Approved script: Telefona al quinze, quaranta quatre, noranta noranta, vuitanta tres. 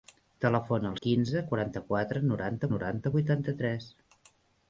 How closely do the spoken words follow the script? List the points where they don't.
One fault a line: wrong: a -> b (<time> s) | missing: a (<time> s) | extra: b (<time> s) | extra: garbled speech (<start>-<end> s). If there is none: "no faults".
no faults